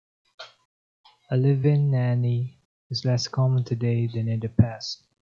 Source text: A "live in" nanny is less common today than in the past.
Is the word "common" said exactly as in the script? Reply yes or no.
yes